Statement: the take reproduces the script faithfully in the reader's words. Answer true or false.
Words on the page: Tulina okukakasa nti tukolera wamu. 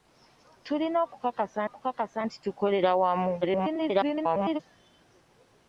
false